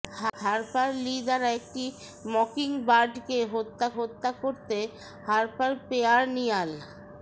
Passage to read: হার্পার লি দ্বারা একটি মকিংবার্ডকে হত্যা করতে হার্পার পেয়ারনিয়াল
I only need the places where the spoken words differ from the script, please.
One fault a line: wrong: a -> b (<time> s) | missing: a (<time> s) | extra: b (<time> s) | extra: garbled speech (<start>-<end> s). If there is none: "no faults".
extra: হত্যা (4.0 s)